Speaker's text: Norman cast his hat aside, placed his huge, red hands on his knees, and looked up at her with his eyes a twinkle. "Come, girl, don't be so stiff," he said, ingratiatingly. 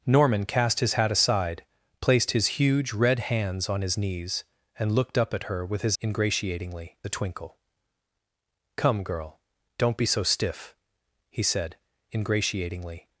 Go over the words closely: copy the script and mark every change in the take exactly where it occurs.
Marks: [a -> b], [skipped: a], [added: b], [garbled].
Norman cast his hat aside, placed his huge, red hands on his knees, and looked up at her with his [eyes -> ingratiatingly] a twinkle. "Come, girl, don't be so stiff," he said, ingratiatingly.